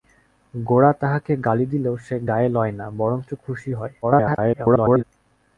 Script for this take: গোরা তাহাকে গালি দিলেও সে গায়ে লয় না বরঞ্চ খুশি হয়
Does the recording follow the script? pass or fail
fail